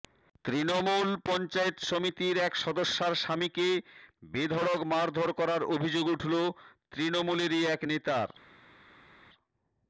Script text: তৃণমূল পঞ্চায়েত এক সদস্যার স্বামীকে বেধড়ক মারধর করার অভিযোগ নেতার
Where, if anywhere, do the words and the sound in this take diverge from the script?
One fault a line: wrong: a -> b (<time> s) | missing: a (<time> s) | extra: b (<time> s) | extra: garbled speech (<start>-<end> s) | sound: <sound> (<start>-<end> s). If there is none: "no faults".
extra: সমিতির (1.9 s)
extra: উঠল তৃণমূলেরই এক (6.2 s)